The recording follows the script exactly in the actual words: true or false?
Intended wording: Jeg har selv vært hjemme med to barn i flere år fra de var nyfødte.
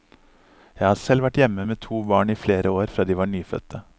true